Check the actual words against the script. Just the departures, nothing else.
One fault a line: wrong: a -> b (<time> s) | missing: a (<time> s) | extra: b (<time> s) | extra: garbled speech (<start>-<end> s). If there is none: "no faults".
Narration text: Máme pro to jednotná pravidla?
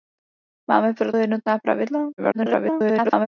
missing: to (1.1 s)
extra: garbled speech (2.2-3.3 s)